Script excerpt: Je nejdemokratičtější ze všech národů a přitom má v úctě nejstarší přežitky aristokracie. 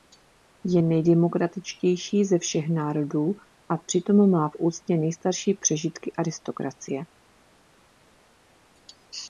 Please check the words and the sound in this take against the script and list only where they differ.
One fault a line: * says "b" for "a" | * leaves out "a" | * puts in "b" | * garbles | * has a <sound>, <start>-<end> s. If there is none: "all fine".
all fine